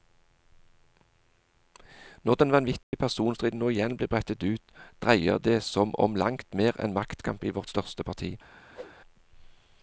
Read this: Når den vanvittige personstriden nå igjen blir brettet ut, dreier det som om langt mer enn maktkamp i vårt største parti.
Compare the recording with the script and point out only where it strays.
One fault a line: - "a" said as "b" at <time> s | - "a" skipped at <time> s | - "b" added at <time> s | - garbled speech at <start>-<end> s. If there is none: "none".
none